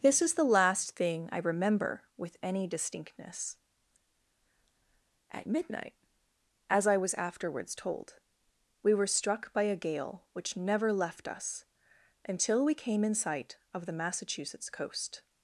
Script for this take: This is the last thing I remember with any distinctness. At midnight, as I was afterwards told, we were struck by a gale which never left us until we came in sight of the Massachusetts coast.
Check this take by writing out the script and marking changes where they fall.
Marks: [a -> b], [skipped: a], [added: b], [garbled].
This is the last thing I remember with any distinctness. At midnight, as I was afterwards told, we were struck by a gale which never left us until we came in sight of the Massachusetts coast.